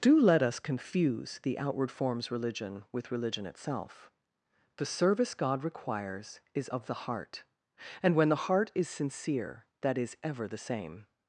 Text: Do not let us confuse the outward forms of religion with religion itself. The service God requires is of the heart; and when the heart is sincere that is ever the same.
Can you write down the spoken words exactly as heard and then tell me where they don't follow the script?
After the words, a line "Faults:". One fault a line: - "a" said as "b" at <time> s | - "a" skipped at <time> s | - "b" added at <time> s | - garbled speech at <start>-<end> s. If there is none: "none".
Do let us confuse the outward forms religion with religion itself. The service God requires is of the heart; and when the heart is sincere that is ever the same.
Faults:
- "not" skipped at 0.2 s
- "of" skipped at 2.3 s